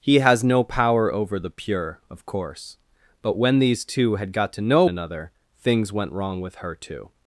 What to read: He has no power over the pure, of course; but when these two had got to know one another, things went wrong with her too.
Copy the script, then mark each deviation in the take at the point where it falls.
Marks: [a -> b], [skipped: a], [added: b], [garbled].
He has no power over the pure, of course; but when these two had got to know [skipped: one] another, things went wrong with her too.